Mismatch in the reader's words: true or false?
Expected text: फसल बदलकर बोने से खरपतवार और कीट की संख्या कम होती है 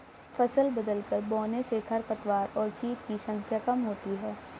false